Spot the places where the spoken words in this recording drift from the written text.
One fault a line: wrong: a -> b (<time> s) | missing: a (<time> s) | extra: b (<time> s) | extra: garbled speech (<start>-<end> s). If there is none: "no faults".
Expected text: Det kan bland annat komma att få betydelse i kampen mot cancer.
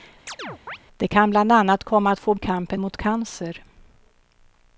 missing: betydelse (2.3 s)